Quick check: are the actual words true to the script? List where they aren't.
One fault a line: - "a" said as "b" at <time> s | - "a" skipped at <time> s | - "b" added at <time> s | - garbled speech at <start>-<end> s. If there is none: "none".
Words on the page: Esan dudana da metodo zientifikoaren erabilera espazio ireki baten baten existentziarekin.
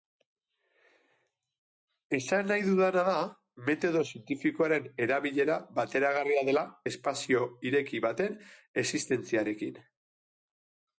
- "nahi" added at 2.5 s
- "bateragarria dela" added at 5.8 s
- "baten" skipped at 8.4 s